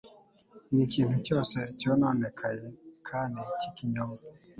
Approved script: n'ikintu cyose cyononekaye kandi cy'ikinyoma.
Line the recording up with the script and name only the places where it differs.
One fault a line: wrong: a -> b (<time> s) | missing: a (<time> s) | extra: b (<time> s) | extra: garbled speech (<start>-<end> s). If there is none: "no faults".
no faults